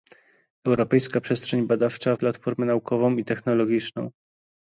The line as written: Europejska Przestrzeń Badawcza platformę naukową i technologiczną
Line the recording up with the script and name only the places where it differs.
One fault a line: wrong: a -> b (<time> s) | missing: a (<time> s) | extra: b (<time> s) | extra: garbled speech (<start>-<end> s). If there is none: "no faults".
no faults